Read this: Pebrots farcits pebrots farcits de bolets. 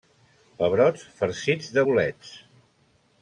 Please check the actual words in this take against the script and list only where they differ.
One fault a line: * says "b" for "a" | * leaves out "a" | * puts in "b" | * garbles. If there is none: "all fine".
* leaves out "pebrots farcits"